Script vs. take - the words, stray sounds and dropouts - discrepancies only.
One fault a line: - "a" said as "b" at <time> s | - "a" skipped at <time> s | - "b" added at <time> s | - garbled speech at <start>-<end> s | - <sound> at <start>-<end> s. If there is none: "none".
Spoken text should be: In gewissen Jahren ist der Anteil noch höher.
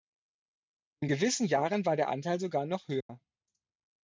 - "ist" said as "war" at 1.8 s
- "sogar" added at 2.4 s
- dropout at 3.0-3.1 s